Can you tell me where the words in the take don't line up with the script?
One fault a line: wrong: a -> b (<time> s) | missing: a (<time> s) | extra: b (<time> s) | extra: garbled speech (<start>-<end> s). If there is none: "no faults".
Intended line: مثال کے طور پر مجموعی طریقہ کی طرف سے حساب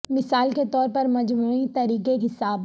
missing: کی طرف سے (2.2 s)